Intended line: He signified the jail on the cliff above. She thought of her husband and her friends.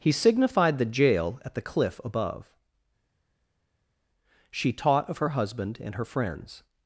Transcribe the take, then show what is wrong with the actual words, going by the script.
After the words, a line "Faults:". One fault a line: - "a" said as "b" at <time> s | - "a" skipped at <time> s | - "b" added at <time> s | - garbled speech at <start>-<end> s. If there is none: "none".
He signified the jail at the cliff above. She taught of her husband and her friends.
Faults:
- "on" said as "at" at 1.4 s
- "thought" said as "taught" at 4.7 s